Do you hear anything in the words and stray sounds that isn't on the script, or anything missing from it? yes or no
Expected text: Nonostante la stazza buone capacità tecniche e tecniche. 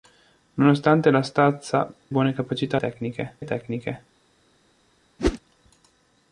yes